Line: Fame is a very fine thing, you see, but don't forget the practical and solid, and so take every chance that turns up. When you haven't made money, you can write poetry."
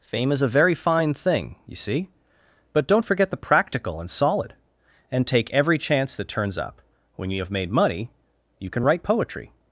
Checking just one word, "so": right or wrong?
wrong